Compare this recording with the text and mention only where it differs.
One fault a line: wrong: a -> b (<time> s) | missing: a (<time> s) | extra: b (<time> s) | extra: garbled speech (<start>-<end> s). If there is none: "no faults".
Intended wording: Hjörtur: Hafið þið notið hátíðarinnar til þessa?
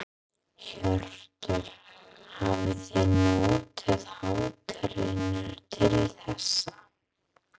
no faults